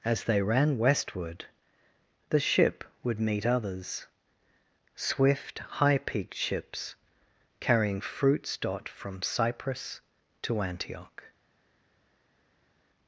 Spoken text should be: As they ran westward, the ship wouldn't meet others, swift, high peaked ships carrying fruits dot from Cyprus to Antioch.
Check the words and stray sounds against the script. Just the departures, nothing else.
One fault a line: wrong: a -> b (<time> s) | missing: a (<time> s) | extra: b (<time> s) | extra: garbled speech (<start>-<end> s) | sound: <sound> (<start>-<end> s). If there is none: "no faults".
wrong: wouldn't -> would (3.0 s)